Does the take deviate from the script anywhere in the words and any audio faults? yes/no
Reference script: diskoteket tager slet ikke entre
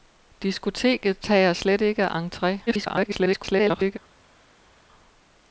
yes